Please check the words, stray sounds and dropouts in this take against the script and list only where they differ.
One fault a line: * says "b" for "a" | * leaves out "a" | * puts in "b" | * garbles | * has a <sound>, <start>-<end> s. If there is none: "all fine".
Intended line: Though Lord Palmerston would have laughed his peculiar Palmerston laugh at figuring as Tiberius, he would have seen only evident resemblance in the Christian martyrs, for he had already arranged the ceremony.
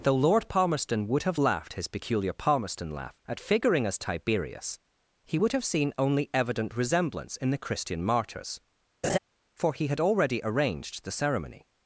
* has a laugh, 9.0-9.2 s